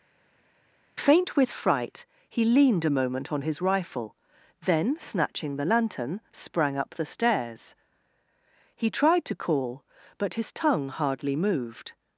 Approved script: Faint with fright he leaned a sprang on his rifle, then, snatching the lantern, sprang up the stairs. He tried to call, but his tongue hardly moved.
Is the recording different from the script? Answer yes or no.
yes